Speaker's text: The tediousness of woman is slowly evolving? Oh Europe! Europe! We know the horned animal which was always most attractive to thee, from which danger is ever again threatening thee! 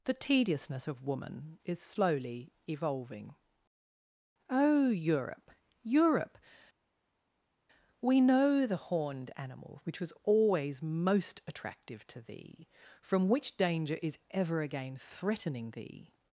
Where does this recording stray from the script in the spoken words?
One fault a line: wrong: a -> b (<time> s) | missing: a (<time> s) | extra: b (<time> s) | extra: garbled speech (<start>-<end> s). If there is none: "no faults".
no faults